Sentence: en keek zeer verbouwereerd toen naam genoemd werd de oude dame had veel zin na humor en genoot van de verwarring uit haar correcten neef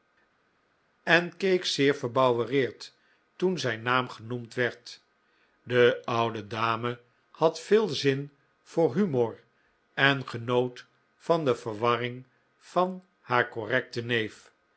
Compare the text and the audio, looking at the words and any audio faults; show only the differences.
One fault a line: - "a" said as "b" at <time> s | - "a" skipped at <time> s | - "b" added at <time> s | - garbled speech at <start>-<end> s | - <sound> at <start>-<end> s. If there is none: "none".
- "zijn" added at 3.6 s
- "na" said as "voor" at 8.6 s
- "uit" said as "van" at 12.6 s